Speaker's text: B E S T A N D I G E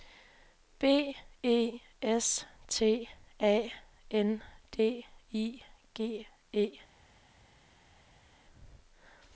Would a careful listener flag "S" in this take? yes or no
no